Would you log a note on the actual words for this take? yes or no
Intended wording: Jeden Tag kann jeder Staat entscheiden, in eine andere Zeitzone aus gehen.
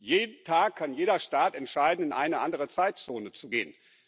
yes